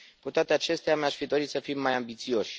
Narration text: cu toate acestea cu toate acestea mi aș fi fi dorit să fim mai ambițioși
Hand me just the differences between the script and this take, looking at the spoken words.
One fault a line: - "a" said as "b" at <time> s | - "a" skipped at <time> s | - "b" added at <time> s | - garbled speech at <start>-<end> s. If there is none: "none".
- "cu toate acestea" skipped at 0.9 s
- "fi" skipped at 1.2 s